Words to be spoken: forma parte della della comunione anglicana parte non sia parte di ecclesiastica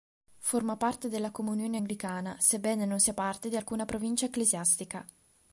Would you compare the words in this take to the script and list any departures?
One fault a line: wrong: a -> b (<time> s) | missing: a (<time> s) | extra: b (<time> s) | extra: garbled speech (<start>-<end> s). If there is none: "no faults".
missing: della (1.3 s)
wrong: parte -> sebbene (2.4 s)
extra: alcuna provincia (3.5 s)